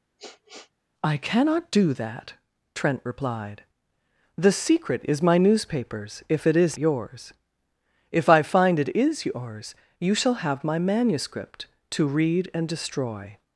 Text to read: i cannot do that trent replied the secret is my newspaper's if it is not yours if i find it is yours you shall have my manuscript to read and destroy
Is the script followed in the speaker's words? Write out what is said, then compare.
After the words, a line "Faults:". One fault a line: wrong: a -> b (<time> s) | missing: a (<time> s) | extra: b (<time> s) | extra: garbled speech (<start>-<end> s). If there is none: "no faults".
i cannot do that trent replied the secret is my newspaper's if it is yours if i find it is yours you shall have my manuscript to read and destroy
Faults:
missing: not (6.8 s)